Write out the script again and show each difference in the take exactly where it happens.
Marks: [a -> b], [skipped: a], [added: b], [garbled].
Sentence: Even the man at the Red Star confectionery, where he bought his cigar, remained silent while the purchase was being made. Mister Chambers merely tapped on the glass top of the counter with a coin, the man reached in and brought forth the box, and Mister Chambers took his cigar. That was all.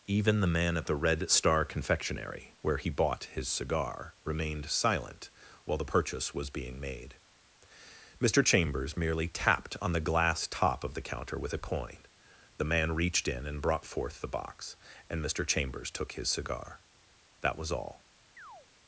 Even the man at the Red Star confectionery, where he bought his cigar, remained silent while the purchase was being made. Mister Chambers merely tapped on the glass top of the counter with a coin, the man reached in and brought forth the box, and Mister Chambers took his cigar. That was all.